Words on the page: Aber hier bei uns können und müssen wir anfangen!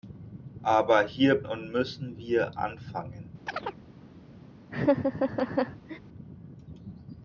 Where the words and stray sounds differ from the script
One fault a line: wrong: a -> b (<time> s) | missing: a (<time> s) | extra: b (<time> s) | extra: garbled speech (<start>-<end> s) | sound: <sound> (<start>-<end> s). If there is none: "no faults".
missing: bei uns können (1.4 s)
sound: chirp (3.5-3.8 s)
sound: laugh (4.7-6.0 s)